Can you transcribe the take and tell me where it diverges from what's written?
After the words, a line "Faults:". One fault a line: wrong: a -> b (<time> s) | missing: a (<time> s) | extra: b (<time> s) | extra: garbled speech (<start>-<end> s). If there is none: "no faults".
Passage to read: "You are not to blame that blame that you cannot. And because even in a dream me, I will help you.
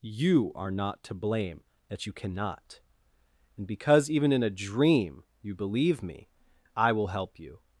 "You are not to blame that you cannot. And because even in a dream you believe me, I will help you.
Faults:
missing: blame that (2.0 s)
extra: you believe (5.4 s)